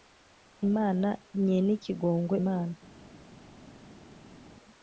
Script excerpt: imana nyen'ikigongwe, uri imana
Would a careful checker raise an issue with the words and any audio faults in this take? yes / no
yes